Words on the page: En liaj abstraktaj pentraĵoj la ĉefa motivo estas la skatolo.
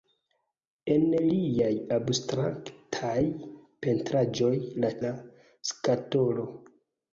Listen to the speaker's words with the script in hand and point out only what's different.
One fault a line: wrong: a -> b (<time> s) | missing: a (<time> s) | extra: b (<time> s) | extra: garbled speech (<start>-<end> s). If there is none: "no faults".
missing: ĉefa motivo estas (4.9 s)